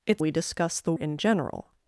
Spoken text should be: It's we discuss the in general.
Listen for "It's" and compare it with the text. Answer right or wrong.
right